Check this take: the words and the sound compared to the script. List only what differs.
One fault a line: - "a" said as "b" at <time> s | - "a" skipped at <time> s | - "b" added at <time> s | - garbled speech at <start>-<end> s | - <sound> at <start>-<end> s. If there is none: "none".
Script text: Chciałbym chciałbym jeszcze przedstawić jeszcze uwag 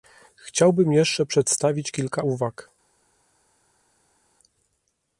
- "chciałbym" skipped at 0.9 s
- "jeszcze" said as "kilka" at 1.9 s